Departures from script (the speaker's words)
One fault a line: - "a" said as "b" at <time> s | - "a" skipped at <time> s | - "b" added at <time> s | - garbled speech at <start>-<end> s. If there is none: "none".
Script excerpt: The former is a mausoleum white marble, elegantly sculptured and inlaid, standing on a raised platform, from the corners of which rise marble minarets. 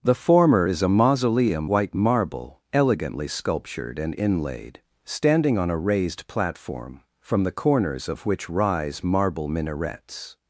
none